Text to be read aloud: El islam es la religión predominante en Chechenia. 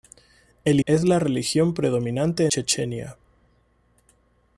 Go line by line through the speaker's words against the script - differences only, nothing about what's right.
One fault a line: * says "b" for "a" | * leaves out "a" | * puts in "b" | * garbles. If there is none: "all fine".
* leaves out "islam"
* leaves out "en"